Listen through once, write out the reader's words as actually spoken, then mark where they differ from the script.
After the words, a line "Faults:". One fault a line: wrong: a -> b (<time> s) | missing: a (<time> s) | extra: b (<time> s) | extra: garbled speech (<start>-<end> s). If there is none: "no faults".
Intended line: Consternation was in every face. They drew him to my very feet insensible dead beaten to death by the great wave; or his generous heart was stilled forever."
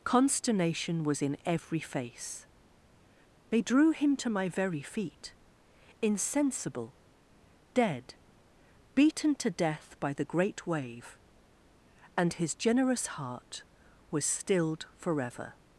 Consternation was in every face. They drew him to my very feet insensible dead beaten to death by the great wave; and his generous heart was stilled forever."
Faults:
wrong: or -> and (12.2 s)